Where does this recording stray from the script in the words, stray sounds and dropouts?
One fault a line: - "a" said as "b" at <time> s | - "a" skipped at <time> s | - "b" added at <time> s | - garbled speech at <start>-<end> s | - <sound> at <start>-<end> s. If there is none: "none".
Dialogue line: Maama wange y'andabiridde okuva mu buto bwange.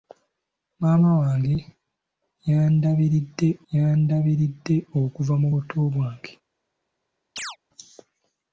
- "y'andabiridde" added at 3.7 s
- chirp at 7.4-7.6 s